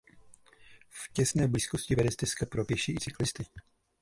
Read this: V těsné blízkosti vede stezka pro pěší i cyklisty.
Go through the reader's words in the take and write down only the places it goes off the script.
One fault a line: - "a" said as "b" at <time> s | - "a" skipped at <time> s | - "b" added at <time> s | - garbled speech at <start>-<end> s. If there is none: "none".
none